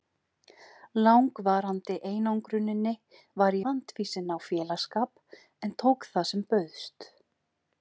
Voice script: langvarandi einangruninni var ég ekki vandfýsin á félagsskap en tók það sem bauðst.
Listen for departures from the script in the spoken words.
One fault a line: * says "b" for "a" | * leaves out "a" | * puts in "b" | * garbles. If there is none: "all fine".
* leaves out "ég ekki"